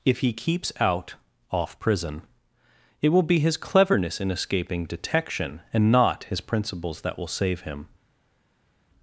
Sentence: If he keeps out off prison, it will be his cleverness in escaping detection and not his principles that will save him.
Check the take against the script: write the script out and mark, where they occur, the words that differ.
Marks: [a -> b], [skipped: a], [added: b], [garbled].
If he keeps out off prison, it will be his cleverness in escaping detection and not his principles that will save him.